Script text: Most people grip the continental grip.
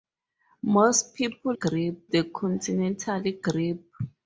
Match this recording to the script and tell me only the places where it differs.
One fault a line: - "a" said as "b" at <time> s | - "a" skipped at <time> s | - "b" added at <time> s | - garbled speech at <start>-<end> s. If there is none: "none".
none